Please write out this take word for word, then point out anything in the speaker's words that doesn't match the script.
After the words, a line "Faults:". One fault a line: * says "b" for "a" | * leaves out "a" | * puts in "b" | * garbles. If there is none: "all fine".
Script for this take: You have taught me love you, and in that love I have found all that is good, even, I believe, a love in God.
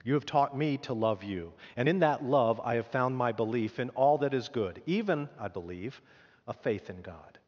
You have taught me to love you, and in that love I have found my belief in all that is good, even, I believe, a faith in God.
Faults:
* puts in "to"
* puts in "my belief in"
* says "faith" for "love"